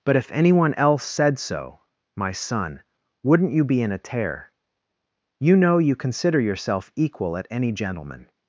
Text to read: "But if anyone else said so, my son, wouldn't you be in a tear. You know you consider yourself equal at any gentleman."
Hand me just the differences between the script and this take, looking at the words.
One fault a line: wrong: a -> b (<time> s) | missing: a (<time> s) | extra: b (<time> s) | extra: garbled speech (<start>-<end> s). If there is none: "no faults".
no faults